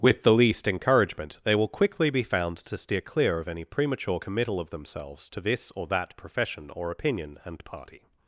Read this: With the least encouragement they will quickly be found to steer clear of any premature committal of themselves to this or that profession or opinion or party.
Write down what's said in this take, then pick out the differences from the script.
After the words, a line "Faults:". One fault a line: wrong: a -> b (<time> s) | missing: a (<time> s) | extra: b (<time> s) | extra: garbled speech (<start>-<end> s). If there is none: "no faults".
With the least encouragement they will quickly be found to steer clear of any premature committal of themselves to this or that profession or opinion and party.
Faults:
wrong: or -> and (7.4 s)